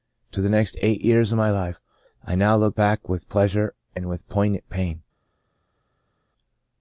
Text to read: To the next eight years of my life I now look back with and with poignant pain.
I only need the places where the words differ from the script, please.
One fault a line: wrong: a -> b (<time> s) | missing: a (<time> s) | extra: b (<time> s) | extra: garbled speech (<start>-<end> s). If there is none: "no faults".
extra: pleasure (3.3 s)